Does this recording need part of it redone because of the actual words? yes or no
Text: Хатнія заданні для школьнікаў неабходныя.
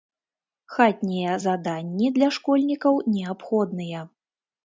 no